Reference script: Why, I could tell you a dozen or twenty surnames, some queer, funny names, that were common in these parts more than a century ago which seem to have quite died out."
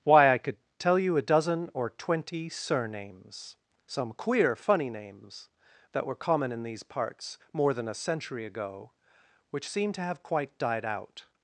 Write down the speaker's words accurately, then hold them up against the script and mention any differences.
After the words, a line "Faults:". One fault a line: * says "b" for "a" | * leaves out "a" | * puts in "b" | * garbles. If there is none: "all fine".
Why, I could tell you a dozen or twenty surnames, some queer, funny names, that were common in these parts more than a century ago which seem to have quite died out."
Faults:
all fine